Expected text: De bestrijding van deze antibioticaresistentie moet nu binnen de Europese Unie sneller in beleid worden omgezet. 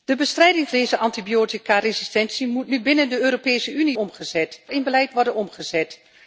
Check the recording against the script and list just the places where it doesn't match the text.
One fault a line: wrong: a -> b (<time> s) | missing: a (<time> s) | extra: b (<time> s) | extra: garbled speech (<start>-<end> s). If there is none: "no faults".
missing: van (0.7 s)
wrong: sneller -> omgezet (4.0 s)